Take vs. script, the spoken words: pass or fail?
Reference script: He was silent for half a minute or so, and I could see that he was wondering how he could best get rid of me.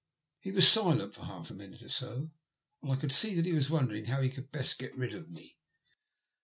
pass